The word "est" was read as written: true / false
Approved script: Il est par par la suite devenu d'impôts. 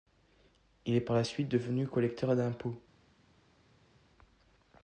true